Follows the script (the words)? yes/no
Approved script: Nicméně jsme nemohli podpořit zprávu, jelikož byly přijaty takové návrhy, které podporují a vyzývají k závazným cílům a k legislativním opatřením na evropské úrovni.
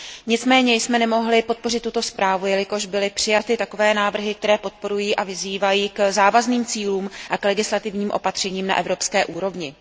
no